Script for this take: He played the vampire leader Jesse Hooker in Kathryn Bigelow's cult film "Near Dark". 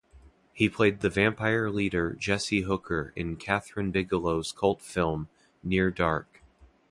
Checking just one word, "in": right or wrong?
right